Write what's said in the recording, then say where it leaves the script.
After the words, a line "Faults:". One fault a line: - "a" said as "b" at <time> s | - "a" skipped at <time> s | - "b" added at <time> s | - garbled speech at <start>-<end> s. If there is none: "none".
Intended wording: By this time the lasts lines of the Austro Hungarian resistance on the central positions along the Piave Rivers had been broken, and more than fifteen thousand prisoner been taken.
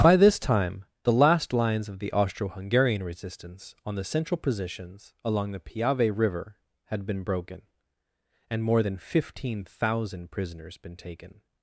By this time the last lines of the Austro Hungarian resistance on the central positions along the Piave River had been broken, and more than fifteen thousand prisoners been taken.
Faults:
- "lasts" said as "last" at 1.1 s
- "Rivers" said as "River" at 6.2 s
- "prisoner" said as "prisoners" at 10.3 s